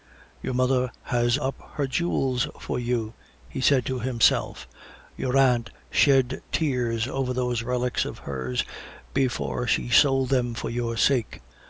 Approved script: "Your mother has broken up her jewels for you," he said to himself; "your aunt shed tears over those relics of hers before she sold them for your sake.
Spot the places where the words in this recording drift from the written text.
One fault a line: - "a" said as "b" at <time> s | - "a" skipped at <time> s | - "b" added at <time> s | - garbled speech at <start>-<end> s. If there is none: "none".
- "broken" skipped at 1.4 s